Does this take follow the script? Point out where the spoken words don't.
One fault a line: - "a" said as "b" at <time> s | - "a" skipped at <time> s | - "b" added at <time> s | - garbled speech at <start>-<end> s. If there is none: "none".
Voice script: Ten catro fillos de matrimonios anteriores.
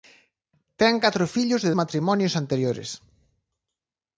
none